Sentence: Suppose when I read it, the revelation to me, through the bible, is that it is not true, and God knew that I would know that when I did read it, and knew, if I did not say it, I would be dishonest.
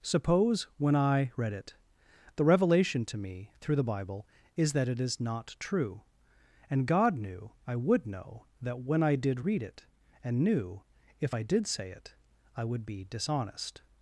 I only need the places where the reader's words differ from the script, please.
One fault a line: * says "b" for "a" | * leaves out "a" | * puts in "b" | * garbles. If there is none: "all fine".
* leaves out "that"
* leaves out "not"